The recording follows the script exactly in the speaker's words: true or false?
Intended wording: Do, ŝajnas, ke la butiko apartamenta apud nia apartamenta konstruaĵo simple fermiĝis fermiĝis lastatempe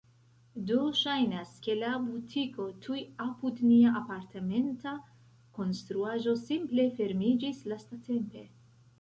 false